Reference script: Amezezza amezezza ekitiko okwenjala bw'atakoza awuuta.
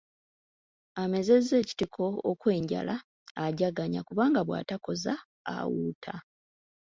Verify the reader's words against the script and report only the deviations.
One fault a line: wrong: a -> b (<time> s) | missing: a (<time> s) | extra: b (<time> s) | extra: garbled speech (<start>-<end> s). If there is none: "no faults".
missing: amezezza (1.6 s)
extra: ajaganya kubanga (3.5 s)